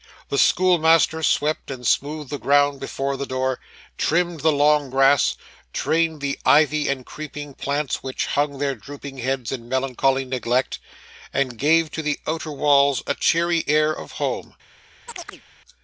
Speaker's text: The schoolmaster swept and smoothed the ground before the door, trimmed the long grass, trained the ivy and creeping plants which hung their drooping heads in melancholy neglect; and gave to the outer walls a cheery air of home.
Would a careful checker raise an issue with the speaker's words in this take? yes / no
no